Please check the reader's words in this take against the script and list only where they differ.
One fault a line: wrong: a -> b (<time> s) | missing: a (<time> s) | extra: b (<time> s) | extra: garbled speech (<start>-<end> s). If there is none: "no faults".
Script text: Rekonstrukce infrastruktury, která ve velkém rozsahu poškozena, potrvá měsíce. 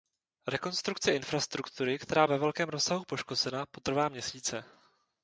no faults